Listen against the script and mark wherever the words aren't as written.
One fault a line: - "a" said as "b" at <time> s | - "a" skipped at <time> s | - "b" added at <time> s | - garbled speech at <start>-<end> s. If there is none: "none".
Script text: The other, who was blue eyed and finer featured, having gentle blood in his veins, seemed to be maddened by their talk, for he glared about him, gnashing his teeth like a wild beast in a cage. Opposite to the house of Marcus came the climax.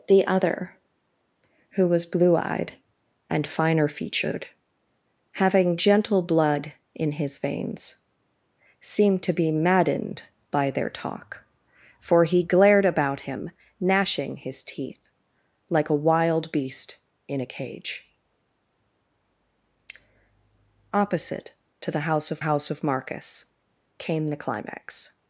- "house of" added at 22.4 s